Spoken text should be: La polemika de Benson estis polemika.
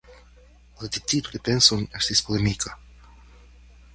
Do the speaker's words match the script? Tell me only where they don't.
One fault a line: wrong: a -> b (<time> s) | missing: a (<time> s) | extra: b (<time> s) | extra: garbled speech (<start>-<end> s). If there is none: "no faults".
wrong: polemika -> decido (0.9 s)